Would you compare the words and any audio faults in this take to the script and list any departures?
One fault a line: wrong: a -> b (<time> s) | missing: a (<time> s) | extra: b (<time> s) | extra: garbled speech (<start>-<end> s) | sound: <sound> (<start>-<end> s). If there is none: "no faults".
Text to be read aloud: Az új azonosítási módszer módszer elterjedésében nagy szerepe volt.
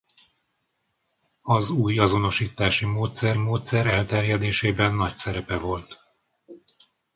no faults